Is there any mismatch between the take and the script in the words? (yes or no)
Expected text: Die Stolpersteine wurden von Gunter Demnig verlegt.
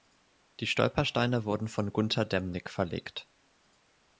no